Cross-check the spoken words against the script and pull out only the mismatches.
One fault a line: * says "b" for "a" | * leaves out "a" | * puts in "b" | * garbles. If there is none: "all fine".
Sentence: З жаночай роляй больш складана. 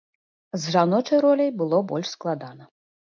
* puts in "было"